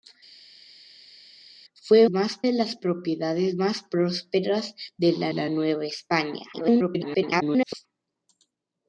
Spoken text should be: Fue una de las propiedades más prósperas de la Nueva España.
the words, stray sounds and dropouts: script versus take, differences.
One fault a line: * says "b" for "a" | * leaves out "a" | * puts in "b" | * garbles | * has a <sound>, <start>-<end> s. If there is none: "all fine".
* says "más" for "una"
* puts in "la"
* garbles